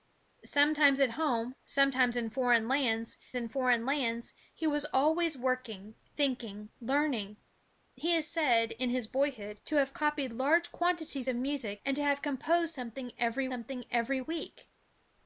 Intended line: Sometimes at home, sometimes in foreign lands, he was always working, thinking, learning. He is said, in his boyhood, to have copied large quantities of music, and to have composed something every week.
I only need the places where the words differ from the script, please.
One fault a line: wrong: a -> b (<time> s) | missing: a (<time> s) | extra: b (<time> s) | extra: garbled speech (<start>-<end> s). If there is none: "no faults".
extra: in foreign lands (3.4 s)
extra: something every (13.5 s)